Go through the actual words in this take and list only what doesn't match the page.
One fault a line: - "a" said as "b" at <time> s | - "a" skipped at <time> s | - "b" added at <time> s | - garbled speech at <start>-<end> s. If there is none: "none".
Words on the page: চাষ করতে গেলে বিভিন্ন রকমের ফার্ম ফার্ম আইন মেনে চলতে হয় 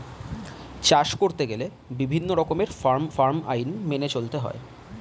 none